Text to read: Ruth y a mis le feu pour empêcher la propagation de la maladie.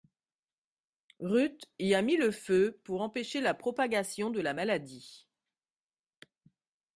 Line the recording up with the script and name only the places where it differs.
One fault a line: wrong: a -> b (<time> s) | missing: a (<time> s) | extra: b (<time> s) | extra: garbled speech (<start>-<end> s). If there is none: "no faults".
no faults